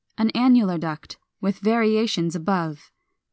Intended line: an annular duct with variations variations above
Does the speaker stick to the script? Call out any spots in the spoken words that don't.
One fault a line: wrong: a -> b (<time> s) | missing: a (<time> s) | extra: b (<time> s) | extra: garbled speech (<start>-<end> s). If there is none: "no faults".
missing: variations (2.4 s)